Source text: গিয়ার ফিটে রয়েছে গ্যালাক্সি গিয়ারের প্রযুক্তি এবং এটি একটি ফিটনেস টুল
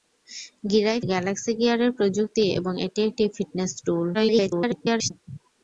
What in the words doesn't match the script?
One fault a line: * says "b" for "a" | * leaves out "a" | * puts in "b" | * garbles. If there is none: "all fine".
* leaves out "ফিটে রয়েছে"
* garbles